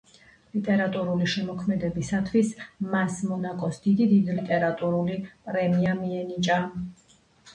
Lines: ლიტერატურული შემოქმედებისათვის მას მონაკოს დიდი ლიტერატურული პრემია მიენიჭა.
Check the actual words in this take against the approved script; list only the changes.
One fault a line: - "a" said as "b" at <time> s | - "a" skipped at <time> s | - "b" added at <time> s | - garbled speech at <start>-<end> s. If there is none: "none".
none